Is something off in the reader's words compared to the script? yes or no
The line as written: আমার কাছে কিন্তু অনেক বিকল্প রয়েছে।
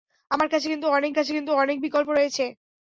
yes